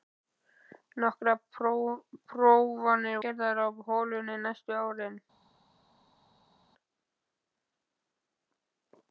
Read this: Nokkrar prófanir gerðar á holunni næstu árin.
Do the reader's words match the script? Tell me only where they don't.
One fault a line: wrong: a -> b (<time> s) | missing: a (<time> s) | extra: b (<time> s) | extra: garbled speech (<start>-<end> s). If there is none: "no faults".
no faults